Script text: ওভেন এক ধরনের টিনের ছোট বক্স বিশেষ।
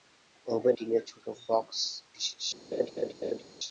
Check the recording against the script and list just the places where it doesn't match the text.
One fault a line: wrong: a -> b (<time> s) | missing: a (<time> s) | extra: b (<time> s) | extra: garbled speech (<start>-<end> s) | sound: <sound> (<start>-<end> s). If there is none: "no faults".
missing: এক ধরনের (0.8 s)
sound: laugh (2.7-3.4 s)